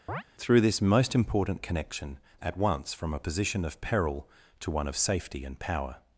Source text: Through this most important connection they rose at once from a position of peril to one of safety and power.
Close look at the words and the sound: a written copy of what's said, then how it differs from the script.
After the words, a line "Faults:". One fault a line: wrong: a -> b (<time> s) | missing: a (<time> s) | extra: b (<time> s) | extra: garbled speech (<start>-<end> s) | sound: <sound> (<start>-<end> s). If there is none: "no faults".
Through this most important connection at once from a position of peril to one of safety and power.
Faults:
sound: chirp (0.1-0.2 s)
missing: they rose (2.2 s)